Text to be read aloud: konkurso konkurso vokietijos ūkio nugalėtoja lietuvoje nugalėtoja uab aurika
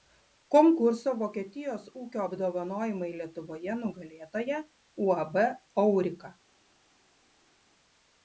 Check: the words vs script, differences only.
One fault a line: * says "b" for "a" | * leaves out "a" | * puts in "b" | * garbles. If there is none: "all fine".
* leaves out "konkurso"
* says "apdovanojimai" for "nugalėtoja"